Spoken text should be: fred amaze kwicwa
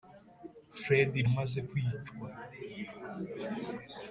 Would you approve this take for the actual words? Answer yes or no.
yes